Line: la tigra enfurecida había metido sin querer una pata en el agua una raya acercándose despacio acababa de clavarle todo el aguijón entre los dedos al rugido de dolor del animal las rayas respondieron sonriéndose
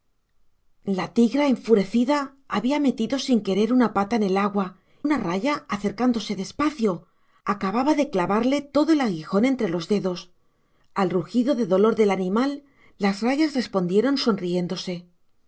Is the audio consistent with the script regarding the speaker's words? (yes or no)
yes